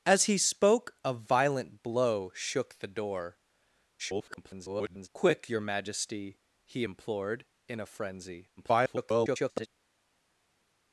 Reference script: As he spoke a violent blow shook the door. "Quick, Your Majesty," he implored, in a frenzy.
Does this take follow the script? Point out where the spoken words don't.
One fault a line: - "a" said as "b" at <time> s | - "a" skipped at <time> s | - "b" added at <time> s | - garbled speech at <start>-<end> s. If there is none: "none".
- garbled speech at 4.0-5.1 s
- garbled speech at 8.6-9.7 s